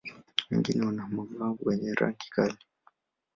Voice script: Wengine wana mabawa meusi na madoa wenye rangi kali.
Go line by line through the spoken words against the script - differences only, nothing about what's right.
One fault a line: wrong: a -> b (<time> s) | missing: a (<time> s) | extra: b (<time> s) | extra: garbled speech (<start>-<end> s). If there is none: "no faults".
missing: meusi na madoa (1.6 s)